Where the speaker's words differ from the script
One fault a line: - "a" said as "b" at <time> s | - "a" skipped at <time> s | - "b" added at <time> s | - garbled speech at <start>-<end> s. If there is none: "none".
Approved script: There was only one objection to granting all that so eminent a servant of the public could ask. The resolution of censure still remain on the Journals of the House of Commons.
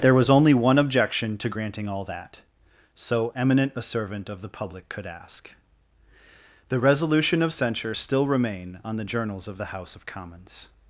none